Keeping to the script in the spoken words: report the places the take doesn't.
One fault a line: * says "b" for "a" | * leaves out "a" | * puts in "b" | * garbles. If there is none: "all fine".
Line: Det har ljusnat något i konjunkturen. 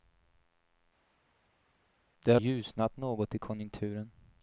all fine